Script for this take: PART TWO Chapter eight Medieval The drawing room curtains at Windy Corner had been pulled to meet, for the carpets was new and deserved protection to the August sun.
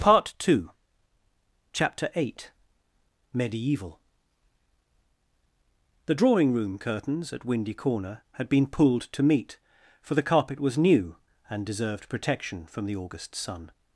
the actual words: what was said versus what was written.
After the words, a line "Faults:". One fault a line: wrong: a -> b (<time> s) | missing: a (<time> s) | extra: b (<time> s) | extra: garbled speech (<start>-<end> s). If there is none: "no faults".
PART TWO Chapter eight Medieval The drawing room curtains at Windy Corner had been pulled to meet, for the carpet was new and deserved protection from the August sun.
Faults:
wrong: carpets -> carpet (10.2 s)
wrong: to -> from (12.7 s)